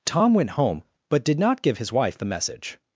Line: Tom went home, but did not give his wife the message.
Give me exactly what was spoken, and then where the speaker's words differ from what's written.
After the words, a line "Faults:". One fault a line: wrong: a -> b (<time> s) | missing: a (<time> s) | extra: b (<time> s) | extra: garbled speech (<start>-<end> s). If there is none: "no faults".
Tom went home, but did not give his wife the message.
Faults:
no faults